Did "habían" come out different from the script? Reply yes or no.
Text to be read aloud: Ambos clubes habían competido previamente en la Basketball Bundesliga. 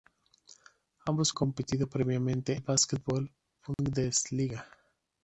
yes